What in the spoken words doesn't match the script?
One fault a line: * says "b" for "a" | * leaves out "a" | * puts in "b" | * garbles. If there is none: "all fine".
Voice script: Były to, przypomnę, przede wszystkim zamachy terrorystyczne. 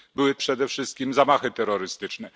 * leaves out "to przypomnę"